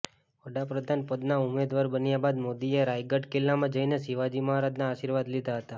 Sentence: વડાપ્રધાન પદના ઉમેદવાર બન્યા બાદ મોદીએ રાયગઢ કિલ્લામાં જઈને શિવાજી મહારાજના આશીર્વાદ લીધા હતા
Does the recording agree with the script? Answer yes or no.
yes